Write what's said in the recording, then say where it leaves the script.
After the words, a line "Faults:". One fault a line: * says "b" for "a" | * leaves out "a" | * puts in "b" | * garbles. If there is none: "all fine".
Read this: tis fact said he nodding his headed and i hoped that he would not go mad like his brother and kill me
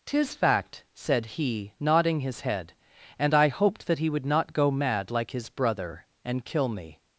tis fact said he nodding his head and i hoped that he would not go mad like his brother and kill me
Faults:
* says "head" for "headed"